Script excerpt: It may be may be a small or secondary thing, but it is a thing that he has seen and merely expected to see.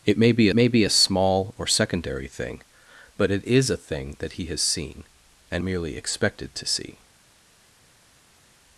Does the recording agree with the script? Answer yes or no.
yes